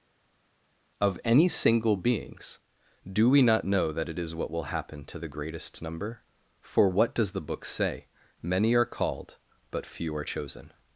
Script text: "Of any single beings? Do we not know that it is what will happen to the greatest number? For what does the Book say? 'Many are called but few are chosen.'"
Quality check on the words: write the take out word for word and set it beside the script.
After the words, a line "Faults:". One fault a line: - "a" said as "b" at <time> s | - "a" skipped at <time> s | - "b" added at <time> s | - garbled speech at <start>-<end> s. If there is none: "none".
"Of any single beings? Do we not know that it is what will happen to the greatest number? For what does the Book say? 'Many are called but few are chosen.'"
Faults:
none